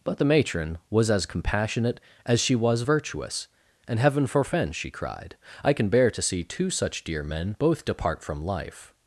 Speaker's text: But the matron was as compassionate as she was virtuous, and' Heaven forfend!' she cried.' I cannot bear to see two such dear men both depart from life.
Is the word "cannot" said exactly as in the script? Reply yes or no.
no